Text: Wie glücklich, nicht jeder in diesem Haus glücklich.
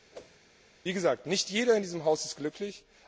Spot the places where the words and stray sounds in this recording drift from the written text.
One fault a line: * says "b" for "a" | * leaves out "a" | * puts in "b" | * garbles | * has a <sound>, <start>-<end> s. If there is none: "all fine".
* has a whoosh, 0.1-0.4 s
* says "gesagt" for "glücklich"
* puts in "ist"